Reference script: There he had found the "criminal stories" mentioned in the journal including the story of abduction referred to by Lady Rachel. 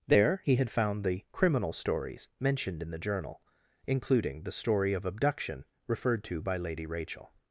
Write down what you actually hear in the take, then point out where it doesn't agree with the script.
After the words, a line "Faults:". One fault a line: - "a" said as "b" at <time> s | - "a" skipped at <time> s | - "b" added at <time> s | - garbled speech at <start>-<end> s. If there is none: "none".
There he had found the "criminal stories" mentioned in the journal including the story of abduction referred to by Lady Rachel.
Faults:
none